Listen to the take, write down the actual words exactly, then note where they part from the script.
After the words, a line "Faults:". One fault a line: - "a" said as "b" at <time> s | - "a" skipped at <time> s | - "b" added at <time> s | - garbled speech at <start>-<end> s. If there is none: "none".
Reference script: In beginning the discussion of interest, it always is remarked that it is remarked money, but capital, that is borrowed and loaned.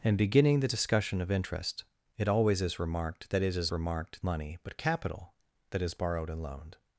In beginning the discussion of interest, it always is remarked that it is remarked money, but capital, that is borrowed and loaned.
Faults:
none